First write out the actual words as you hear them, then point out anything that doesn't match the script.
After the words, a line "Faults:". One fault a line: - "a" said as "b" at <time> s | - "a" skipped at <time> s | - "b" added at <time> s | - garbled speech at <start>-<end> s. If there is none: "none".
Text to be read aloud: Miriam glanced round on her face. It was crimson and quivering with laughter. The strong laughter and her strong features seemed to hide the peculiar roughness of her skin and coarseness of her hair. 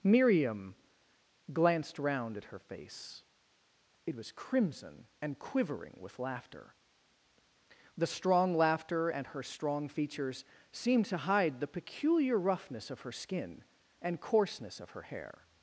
Miriam glanced round at her face. It was crimson and quivering with laughter. The strong laughter and her strong features seemed to hide the peculiar roughness of her skin and coarseness of her hair.
Faults:
- "on" said as "at" at 2.4 s